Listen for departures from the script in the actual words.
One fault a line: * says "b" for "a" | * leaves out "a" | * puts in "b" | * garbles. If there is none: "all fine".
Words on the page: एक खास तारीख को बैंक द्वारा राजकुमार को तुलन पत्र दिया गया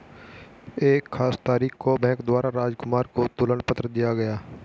all fine